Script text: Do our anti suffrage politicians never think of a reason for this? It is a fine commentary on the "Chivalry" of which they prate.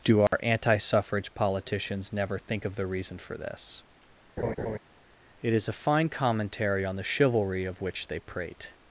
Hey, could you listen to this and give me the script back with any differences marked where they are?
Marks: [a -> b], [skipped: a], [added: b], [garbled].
Do our anti suffrage politicians never think of [a -> the] reason for this? It is a fine commentary on the "Chivalry" of which they prate.